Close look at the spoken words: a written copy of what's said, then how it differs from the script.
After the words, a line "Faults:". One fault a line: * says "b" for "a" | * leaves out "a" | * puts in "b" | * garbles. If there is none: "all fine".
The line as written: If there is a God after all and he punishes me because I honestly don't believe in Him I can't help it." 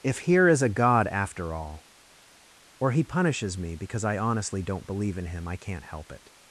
If here is a God after all or he punishes me because I honestly don't believe in Him I can't help it."
Faults:
* says "here" for "there"
* says "or" for "and"